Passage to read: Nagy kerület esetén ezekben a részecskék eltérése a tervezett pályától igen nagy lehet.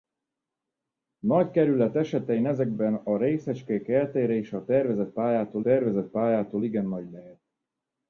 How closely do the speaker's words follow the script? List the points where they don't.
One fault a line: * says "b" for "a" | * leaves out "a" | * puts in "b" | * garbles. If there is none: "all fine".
* puts in "tervezett pályától"